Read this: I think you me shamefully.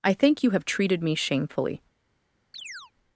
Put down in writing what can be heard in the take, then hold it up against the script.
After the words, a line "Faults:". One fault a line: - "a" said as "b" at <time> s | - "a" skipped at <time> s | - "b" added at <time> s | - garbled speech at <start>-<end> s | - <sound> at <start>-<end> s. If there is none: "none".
I think you have treated me shamefully.
Faults:
- "have treated" added at 0.5 s
- chirp at 2.5-2.9 s